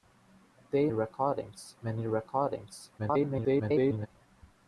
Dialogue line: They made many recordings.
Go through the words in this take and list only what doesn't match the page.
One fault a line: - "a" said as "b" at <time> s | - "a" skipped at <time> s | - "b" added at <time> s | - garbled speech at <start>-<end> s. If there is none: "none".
- "made" said as "recordings" at 0.9 s
- garbled speech at 3.0-4.1 s